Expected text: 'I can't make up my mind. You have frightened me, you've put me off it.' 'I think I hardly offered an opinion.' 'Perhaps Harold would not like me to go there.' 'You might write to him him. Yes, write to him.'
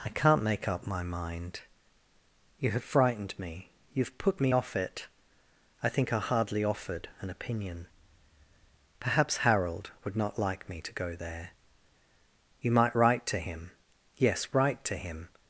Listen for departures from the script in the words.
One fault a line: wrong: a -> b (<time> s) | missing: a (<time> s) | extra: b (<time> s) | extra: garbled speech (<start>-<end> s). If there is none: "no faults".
missing: him (13.7 s)